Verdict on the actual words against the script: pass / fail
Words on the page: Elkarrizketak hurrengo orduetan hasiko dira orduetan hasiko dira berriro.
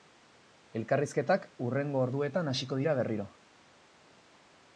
fail